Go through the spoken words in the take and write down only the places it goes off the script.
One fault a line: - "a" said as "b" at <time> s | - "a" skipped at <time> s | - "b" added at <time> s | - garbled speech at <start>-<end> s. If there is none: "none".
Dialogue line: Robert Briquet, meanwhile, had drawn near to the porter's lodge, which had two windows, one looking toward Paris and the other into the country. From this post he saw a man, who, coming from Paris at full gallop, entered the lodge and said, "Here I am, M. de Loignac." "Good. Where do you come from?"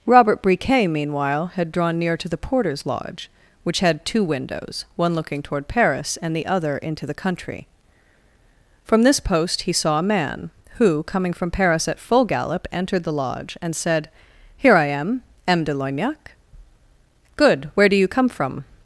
none